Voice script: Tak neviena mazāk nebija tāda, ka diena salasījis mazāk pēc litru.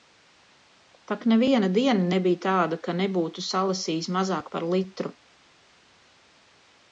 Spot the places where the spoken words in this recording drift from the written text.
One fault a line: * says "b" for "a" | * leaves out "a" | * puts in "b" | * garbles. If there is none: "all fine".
* says "diena" for "mazāk"
* says "nebūtu" for "diena"
* says "par" for "pēc"